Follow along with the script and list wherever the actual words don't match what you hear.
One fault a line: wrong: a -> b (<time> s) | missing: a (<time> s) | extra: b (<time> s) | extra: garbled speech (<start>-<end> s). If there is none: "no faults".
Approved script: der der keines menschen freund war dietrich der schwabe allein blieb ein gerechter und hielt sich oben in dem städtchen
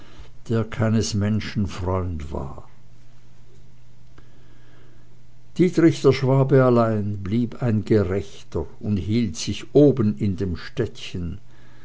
missing: der (0.6 s)